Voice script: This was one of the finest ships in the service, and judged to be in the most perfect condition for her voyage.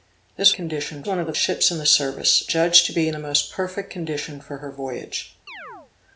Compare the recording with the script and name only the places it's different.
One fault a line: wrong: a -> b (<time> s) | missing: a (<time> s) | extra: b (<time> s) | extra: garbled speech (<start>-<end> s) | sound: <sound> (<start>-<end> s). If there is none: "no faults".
wrong: was -> condition (0.5 s)
missing: finest (1.3 s)
missing: and (2.5 s)
sound: chirp (5.5-5.9 s)